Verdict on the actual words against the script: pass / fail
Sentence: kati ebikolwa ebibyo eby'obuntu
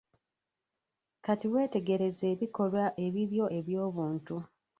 fail